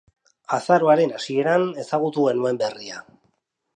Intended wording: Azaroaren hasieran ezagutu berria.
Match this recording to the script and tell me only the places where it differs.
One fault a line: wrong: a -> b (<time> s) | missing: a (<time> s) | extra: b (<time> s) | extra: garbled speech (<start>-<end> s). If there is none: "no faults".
extra: genuen (2.3 s)